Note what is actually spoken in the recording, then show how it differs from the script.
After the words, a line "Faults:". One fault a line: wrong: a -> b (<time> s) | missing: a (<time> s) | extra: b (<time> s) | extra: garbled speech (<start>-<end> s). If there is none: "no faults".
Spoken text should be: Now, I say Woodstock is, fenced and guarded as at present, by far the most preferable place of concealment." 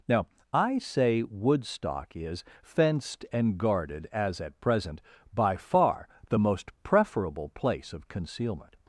Now, I say Woodstock is, fenced and guarded as at present, by far the most preferable place of concealment."
Faults:
no faults